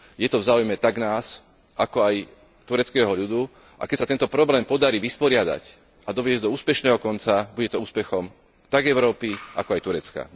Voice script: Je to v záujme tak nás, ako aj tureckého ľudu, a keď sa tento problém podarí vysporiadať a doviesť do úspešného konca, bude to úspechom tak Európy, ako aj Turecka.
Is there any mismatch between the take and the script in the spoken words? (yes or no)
no